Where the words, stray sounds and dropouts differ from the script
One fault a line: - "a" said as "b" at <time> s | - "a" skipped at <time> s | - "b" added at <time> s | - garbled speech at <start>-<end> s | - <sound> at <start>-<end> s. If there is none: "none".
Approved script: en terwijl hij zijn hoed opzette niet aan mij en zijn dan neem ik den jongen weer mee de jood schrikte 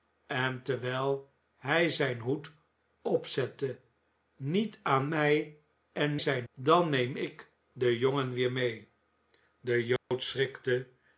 - dropout at 10.0-10.1 s